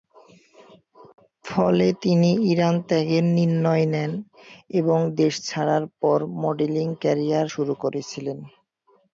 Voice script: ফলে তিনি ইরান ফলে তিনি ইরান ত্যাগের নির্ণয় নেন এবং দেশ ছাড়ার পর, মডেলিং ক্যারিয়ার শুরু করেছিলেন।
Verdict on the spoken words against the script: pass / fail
fail